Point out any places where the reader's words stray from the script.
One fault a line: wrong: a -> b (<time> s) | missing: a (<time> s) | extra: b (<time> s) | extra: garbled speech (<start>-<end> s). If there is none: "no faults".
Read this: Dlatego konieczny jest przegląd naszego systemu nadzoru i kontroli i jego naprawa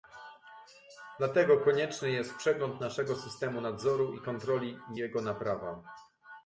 no faults